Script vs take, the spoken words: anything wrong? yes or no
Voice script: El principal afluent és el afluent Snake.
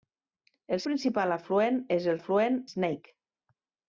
no